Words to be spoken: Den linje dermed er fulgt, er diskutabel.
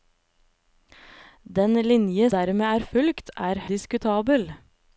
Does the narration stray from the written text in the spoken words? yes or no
no